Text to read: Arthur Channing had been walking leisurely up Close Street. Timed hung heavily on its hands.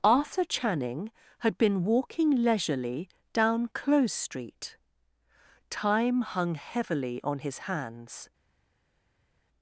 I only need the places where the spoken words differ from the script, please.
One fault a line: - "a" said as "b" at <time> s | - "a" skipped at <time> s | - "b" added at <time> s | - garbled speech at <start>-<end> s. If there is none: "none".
- "up" said as "down" at 3.3 s
- "Timed" said as "Time" at 5.7 s
- "its" said as "his" at 7.4 s